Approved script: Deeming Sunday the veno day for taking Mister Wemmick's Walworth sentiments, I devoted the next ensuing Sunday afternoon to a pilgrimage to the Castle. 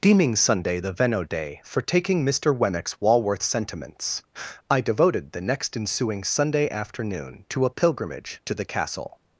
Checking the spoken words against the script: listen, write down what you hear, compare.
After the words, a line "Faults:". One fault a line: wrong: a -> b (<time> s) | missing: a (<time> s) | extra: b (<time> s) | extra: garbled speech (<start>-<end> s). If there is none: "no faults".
Deeming Sunday the veno day for taking Mister Wemmick's Walworth sentiments, I devoted the next ensuing Sunday afternoon to a pilgrimage to the Castle.
Faults:
no faults